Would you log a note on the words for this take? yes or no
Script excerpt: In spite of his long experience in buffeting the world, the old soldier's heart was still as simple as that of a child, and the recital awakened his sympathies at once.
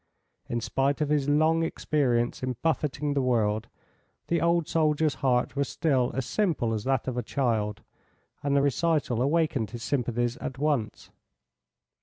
no